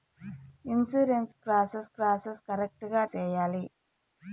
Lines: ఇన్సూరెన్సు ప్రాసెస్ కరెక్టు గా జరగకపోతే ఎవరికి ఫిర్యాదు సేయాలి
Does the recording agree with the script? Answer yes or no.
no